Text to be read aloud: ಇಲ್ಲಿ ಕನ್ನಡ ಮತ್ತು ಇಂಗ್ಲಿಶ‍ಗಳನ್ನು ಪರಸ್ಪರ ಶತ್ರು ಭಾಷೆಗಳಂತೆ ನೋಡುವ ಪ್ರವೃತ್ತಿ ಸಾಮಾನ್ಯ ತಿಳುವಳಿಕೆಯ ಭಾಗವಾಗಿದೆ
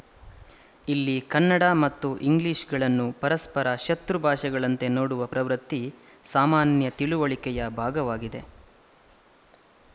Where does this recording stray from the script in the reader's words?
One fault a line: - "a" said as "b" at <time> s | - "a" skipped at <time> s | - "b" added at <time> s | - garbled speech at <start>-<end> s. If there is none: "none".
none